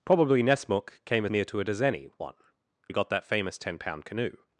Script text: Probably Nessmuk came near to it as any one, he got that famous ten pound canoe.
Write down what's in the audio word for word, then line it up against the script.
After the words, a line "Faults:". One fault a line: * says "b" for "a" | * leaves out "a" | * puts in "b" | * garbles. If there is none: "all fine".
Probably Nessmuk came near to it as any one, he got that famous ten pound canoe.
Faults:
all fine